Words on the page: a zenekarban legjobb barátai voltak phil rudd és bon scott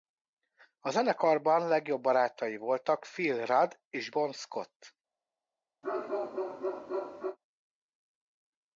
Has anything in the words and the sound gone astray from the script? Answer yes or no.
yes